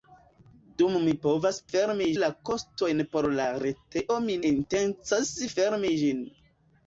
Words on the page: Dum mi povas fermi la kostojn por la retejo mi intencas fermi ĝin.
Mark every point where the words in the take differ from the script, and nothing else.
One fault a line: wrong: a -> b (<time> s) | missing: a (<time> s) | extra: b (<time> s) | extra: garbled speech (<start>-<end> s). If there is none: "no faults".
no faults